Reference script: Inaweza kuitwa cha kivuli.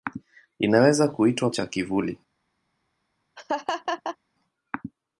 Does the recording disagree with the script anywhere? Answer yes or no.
no